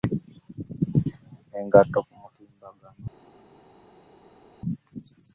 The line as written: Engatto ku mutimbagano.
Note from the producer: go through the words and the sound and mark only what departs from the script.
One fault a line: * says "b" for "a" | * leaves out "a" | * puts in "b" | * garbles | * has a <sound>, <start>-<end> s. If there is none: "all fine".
all fine